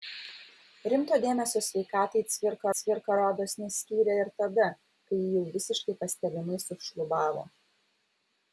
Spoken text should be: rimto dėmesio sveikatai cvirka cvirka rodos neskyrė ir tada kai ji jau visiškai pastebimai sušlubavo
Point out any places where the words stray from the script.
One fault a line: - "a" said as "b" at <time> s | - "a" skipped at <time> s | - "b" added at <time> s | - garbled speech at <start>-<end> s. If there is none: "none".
none